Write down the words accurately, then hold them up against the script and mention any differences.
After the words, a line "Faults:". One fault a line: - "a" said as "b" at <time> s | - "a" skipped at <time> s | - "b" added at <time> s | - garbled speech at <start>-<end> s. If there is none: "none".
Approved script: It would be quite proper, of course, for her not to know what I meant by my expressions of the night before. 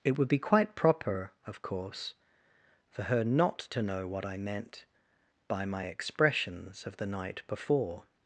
It would be quite proper, of course, for her not to know what I meant by my expressions of the night before.
Faults:
none